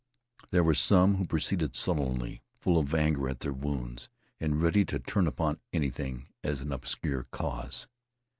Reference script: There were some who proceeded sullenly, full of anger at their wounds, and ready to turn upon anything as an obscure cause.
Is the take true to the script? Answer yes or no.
yes